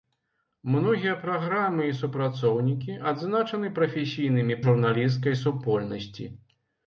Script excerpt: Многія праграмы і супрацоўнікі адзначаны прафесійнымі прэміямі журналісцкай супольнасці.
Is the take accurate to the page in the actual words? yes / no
no